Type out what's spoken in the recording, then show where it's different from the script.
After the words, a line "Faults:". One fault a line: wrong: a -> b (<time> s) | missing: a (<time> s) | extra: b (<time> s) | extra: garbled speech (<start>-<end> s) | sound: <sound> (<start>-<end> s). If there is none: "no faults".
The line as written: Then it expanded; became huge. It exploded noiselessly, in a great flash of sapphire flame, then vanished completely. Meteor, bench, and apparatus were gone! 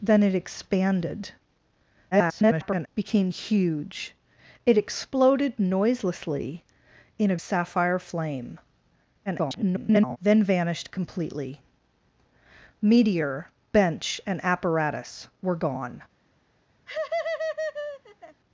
Then it expanded; [garbled] became huge. It exploded noiselessly, in a sapphire flame, [garbled] then vanished completely. Meteor, bench, and apparatus were gone!
Faults:
extra: garbled speech (2.1-2.9 s)
missing: great flash of (7.4 s)
extra: garbled speech (9.3-10.2 s)
sound: laugh (16.9-18.4 s)